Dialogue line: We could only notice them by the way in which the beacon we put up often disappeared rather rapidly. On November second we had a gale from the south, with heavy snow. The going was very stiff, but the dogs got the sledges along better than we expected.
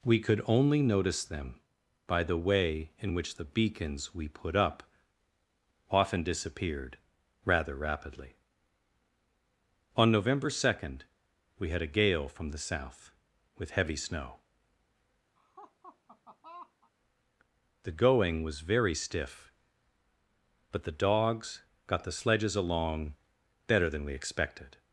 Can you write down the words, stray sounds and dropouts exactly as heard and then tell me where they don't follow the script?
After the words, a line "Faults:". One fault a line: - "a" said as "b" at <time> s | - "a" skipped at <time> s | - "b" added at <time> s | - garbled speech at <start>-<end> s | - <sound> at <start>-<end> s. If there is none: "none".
We could only notice them by the way in which the beacons we put up often disappeared rather rapidly. On November second we had a gale from the south, with heavy snow. The going was very stiff, but the dogs got the sledges along better than we expected.
Faults:
- "beacon" said as "beacons" at 3.5 s
- laugh at 15.4-16.9 s